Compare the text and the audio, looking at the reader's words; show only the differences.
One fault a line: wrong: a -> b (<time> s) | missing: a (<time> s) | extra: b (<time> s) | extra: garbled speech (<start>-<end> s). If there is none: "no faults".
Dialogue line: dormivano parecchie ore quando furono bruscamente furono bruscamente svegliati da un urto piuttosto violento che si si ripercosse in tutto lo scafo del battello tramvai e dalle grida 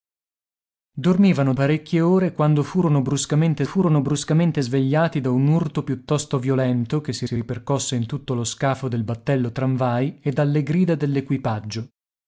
no faults